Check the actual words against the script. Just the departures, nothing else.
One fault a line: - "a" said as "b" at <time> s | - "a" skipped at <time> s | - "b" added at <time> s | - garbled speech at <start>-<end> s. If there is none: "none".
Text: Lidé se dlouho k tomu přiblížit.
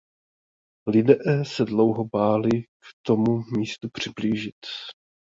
- "báli" added at 2.1 s
- "místu" added at 3.5 s